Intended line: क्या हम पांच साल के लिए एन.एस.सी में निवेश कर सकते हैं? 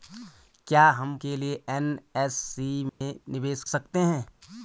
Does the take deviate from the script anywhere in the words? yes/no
yes